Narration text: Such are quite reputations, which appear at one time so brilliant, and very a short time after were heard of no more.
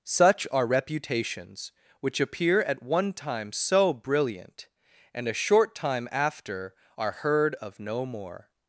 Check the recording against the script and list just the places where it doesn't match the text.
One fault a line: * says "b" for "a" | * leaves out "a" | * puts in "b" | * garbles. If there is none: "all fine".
* leaves out "quite"
* leaves out "very"
* says "are" for "were"